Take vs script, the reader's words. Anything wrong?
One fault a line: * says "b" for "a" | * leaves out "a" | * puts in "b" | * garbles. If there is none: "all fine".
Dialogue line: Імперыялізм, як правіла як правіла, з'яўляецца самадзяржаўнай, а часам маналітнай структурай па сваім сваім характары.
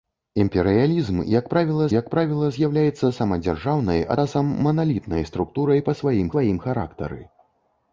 all fine